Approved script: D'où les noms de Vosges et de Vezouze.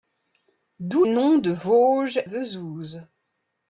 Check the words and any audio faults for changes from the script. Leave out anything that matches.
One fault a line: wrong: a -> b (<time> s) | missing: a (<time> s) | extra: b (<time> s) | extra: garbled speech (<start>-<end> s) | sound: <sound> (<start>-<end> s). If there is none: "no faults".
missing: les (1.1 s)
missing: et de (2.2 s)